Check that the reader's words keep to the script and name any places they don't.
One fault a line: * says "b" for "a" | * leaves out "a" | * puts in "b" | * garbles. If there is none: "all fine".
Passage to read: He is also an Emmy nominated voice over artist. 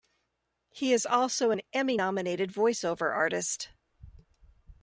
all fine